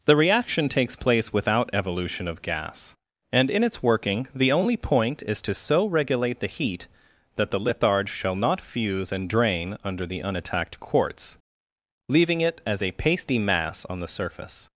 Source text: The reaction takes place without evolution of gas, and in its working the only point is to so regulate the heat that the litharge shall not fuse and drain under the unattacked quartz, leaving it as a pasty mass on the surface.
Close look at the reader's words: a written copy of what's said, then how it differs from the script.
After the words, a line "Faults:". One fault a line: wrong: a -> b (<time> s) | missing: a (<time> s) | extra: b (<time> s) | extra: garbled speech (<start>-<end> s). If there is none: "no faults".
The reaction takes place without evolution of gas, and in its working the only point is to so regulate the heat that the litharge shall not fuse and drain under the unattacked quartz, leaving it as a pasty mass on the surface.
Faults:
no faults